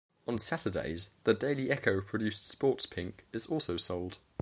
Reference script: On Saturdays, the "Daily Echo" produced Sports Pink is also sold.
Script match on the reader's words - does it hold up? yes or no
yes